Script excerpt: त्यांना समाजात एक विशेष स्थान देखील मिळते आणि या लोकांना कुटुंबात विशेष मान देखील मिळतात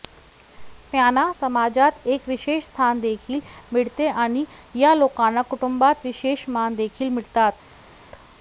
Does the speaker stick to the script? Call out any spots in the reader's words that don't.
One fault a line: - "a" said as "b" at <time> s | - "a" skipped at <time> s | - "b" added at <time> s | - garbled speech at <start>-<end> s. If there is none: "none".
none